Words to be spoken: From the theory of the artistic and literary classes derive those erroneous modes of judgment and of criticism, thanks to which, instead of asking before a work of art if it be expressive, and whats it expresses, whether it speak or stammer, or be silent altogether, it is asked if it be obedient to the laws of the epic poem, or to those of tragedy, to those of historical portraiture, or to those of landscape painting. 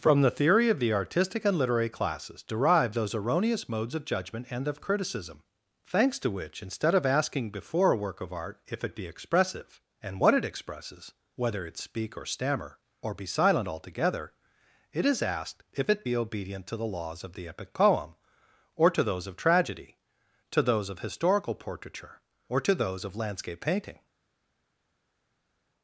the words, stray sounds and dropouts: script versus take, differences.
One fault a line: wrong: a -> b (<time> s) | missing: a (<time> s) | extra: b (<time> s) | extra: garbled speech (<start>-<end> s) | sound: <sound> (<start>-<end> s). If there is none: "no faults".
wrong: whats -> what (10.2 s)